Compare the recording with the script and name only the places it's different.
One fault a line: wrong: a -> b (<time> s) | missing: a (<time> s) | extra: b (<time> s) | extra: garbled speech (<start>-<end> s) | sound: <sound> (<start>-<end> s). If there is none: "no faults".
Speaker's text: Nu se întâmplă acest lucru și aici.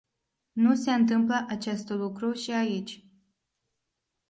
no faults